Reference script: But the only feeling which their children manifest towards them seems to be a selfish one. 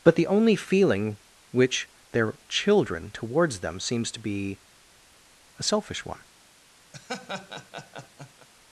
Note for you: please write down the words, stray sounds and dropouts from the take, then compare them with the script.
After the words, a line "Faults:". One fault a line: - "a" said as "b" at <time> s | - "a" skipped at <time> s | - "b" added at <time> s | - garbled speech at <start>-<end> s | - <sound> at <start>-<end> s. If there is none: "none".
But the only feeling which their children towards them seems to be a selfish one.
Faults:
- "manifest" skipped at 3.1 s
- laugh at 6.9-8.5 s